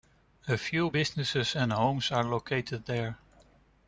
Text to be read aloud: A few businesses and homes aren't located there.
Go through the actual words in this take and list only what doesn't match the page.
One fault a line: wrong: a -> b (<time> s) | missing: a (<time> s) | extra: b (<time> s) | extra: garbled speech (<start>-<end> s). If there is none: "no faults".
wrong: aren't -> are (2.1 s)